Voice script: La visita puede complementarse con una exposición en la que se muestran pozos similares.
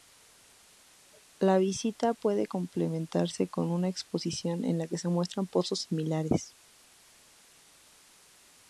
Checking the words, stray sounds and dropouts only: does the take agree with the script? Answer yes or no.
yes